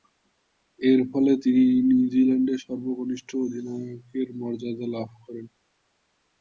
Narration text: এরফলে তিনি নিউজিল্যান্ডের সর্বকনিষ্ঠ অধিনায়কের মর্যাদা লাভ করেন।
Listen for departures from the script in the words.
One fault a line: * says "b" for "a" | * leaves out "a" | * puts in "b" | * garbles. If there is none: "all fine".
all fine